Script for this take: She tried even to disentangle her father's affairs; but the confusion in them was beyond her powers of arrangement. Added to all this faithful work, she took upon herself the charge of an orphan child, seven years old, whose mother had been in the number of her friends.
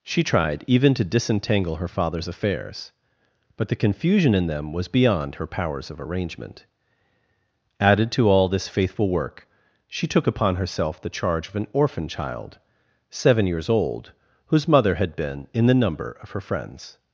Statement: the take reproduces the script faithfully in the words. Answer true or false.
true